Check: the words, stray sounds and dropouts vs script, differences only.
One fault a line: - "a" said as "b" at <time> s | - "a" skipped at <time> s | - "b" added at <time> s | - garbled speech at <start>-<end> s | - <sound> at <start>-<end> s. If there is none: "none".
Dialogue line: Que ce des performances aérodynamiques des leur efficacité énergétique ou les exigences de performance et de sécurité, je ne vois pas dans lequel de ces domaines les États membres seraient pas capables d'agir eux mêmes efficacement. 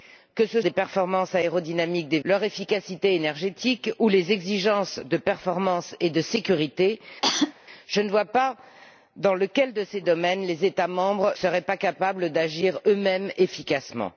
- cough at 7.2-7.5 s